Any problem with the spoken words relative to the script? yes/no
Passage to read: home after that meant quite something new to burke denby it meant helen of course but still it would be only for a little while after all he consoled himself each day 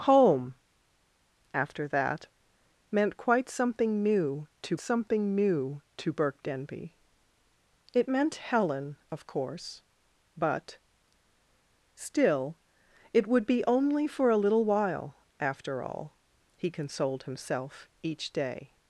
yes